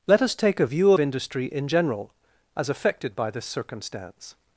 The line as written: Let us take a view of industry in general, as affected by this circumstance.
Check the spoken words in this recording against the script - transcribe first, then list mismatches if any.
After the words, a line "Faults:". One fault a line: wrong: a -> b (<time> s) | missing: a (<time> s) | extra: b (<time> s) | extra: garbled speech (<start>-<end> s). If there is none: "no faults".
Let us take a view industry in general, as affected by this circumstance.
Faults:
missing: of (0.9 s)